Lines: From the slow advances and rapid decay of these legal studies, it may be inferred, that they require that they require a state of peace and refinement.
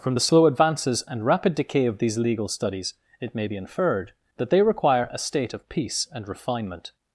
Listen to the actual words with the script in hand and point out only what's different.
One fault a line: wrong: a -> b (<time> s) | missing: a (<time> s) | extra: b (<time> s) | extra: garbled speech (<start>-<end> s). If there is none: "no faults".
missing: that they require (5.1 s)